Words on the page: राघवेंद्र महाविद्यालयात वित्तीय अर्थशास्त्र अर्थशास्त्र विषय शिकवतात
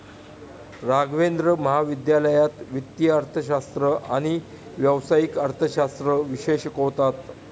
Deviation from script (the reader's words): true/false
true